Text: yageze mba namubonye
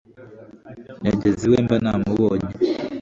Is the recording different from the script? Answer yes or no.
yes